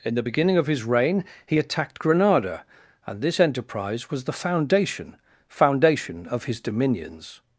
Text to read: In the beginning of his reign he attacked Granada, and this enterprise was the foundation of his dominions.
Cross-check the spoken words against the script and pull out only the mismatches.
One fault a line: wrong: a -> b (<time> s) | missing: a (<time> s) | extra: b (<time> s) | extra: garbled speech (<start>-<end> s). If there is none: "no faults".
extra: foundation (5.5 s)